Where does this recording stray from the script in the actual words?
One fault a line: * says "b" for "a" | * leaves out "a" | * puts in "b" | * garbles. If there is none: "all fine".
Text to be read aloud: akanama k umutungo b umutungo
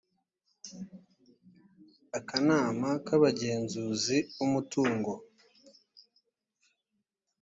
* says "abagenzuzi" for "umutungo"